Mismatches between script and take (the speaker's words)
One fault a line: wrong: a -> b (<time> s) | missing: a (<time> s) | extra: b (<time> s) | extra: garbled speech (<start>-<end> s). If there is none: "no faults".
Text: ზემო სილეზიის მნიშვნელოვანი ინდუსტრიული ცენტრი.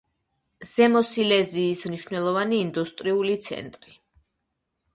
no faults